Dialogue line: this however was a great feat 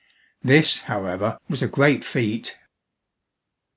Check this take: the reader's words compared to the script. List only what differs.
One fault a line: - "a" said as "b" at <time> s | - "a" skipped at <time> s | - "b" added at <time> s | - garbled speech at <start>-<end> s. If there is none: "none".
none